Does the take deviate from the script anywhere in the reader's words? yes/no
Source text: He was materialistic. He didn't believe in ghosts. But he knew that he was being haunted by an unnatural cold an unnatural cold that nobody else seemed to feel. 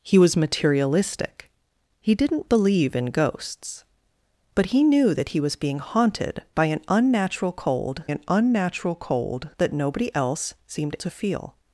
no